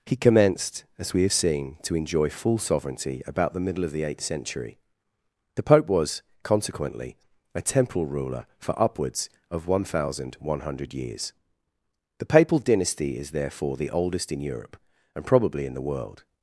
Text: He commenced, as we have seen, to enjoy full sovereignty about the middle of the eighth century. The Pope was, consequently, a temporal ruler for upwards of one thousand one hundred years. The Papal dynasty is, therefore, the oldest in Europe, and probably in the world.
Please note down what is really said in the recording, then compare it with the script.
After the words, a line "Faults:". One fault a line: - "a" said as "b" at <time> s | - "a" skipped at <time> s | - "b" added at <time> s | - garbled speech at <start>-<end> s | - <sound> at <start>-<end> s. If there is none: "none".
He commenced, as we have seen, to enjoy full sovereignty about the middle of the eighth century. The Pope was, consequently, a temporal ruler for upwards of one thousand one hundred years. The Papal dynasty is, therefore, the oldest in Europe, and probably in the world.
Faults:
none